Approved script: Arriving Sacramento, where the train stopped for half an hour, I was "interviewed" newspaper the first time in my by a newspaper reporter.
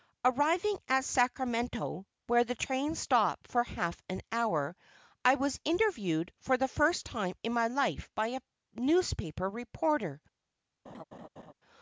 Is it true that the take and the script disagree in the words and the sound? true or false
true